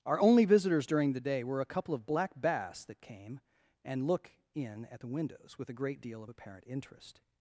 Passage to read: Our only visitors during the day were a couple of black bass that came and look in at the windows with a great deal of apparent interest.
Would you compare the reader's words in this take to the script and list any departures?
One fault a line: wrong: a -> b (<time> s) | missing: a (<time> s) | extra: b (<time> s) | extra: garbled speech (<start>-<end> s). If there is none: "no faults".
no faults